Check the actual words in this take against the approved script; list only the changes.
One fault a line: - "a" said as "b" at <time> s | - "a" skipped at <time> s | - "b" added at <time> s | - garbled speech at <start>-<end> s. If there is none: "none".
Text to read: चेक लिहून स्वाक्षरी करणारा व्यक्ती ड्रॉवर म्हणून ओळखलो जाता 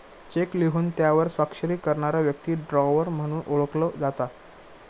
- "त्यावर" added at 1.0 s